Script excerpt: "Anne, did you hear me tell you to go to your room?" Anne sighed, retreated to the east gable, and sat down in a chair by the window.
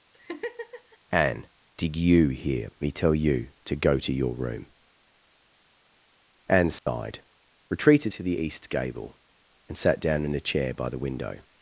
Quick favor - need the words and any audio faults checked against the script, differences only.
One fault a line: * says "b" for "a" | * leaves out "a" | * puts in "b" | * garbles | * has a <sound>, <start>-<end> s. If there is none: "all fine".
* has a laugh, 0.1-1.0 s
* has a dropout, 6.8-6.9 s